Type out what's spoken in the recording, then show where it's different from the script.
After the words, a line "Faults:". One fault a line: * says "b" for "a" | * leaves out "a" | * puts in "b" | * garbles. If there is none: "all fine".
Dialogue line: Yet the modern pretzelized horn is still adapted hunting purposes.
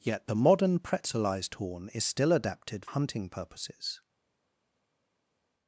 Yet the modern pretzelized horn is still adapted hunting purposes.
Faults:
all fine